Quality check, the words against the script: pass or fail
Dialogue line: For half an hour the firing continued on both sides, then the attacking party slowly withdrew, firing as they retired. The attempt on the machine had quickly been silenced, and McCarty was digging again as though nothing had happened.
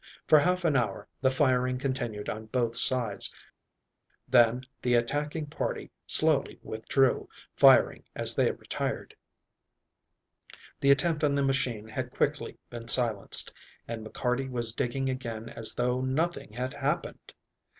pass